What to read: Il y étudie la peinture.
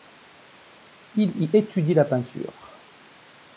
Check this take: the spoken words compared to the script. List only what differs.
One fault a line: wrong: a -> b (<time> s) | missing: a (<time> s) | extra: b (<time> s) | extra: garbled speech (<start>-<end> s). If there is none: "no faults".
no faults